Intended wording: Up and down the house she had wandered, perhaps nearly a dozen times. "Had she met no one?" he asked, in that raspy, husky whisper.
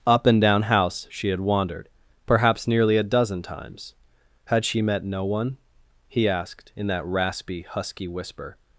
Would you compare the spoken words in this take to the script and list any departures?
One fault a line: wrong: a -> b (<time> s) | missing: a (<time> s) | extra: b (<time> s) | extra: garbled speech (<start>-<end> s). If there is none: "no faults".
missing: the (0.6 s)